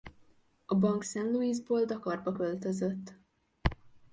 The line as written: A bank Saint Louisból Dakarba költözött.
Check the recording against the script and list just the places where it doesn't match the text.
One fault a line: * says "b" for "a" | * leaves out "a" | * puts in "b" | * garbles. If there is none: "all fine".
all fine